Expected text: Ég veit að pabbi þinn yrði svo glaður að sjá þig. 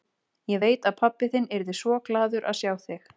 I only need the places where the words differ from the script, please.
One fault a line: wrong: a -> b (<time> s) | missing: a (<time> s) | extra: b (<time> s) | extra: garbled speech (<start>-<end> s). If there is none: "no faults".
no faults